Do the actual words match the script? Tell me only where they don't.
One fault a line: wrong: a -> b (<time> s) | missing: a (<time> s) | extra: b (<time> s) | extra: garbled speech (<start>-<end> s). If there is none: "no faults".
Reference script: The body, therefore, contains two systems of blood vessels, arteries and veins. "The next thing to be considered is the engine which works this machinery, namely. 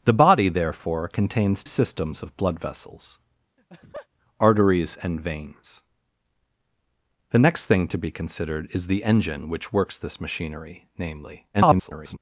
missing: two (1.6 s)
extra: garbled speech (11.5-12.2 s)